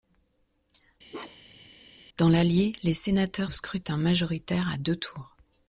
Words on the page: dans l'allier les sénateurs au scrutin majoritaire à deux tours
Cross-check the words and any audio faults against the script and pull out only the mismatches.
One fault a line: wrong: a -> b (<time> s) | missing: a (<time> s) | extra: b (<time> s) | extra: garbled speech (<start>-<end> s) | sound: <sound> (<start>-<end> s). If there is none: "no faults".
sound: bark (1.1-1.7 s)